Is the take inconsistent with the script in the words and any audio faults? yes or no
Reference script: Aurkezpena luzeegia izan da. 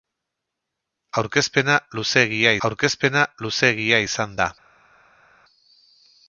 yes